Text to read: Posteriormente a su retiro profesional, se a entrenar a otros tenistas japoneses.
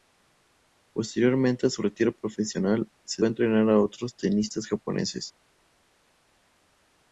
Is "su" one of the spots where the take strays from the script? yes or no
no